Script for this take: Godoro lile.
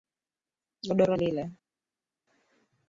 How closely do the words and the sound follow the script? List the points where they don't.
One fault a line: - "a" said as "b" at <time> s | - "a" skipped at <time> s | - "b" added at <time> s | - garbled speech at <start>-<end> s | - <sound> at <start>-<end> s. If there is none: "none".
none